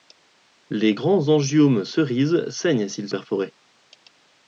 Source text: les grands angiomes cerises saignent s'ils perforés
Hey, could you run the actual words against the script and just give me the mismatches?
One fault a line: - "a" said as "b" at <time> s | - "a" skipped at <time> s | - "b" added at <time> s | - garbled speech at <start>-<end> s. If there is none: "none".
none